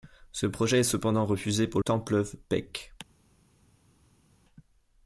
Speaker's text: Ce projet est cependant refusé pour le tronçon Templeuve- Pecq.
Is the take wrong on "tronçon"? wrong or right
wrong